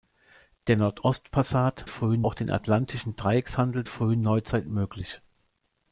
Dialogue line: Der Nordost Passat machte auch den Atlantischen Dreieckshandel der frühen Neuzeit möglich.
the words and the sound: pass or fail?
fail